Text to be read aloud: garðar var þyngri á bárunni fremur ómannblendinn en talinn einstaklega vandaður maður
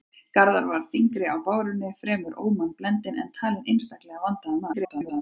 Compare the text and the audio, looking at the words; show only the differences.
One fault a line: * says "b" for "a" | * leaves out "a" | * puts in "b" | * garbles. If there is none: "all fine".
* garbles